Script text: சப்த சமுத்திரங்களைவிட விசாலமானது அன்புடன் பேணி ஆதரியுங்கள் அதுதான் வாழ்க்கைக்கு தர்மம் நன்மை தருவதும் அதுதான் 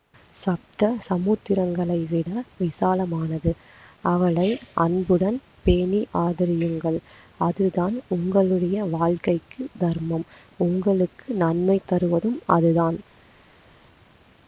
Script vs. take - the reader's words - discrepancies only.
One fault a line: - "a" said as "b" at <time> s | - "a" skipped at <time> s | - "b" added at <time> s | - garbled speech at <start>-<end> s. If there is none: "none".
- "அவளை" added at 4.0 s
- "உங்களுடைய" added at 8.1 s
- "உங்களுக்கு" added at 10.6 s